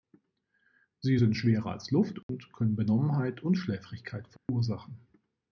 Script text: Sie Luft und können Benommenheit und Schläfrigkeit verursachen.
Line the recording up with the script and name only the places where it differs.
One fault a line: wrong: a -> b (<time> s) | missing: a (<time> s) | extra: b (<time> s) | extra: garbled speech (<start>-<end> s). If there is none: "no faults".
extra: sind schwerer als (1.2 s)